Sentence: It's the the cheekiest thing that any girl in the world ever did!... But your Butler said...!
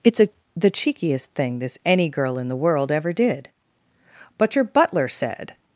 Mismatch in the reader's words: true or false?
true